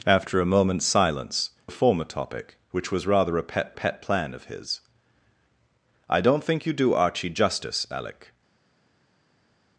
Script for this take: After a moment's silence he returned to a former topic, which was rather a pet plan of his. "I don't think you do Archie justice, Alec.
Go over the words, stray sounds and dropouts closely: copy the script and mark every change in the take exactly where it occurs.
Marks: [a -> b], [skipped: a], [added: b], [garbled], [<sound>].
After a moment's silence [skipped: he returned to] a former topic, which was rather a pet [added: pet] plan of his. "I don't think you do Archie justice, Alec.